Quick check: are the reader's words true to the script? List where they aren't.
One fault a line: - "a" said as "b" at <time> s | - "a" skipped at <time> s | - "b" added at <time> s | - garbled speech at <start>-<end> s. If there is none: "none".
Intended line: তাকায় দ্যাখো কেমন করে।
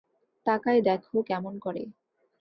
none